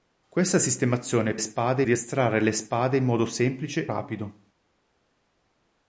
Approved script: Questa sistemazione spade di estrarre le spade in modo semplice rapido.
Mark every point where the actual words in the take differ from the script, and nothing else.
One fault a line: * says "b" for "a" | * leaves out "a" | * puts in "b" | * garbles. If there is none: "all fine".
all fine